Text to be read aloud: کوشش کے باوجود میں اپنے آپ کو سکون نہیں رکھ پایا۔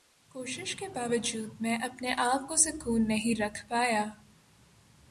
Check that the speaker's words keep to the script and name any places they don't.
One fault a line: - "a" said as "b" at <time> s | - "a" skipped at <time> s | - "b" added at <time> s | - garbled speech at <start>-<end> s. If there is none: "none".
none